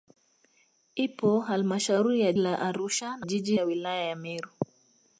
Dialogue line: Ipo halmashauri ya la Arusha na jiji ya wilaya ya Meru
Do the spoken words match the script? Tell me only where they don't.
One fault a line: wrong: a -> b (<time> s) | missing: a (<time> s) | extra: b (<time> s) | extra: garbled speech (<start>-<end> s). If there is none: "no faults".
no faults